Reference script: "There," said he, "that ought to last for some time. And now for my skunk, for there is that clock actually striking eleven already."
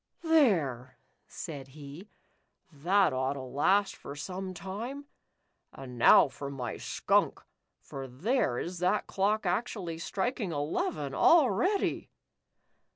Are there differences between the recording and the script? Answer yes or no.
no